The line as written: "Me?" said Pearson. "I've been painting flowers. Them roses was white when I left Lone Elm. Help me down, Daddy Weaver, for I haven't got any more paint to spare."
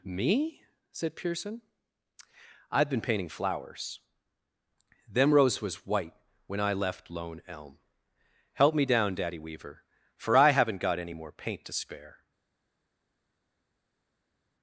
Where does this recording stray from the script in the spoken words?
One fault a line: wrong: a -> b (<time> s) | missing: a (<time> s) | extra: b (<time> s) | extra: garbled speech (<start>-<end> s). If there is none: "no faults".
wrong: roses -> rose (5.3 s)